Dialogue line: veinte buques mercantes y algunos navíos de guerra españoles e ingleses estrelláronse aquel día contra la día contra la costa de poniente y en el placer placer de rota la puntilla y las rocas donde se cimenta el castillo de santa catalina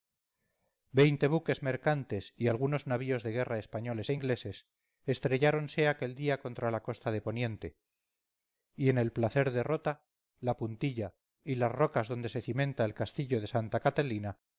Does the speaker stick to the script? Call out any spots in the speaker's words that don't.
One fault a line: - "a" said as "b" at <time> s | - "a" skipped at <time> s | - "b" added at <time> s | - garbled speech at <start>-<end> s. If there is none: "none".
- "día contra la" skipped at 6.8 s
- "placer" skipped at 9.5 s